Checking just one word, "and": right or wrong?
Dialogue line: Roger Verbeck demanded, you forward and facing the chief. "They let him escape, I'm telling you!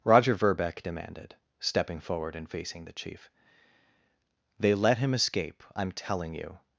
right